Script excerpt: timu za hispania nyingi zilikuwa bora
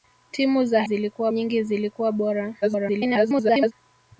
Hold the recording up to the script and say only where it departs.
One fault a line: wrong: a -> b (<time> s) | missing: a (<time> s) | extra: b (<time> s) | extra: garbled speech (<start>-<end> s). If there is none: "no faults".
wrong: hispania -> zilikuwa (0.8 s)
extra: garbled speech (2.6-3.7 s)